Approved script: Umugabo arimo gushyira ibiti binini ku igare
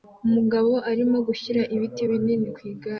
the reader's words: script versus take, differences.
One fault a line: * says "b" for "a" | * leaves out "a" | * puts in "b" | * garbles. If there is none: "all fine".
all fine